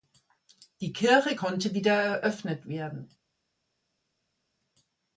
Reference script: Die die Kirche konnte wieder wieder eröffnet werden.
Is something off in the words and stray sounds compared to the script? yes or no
yes